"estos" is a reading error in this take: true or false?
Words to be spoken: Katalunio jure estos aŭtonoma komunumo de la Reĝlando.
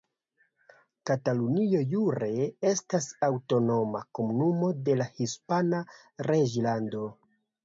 true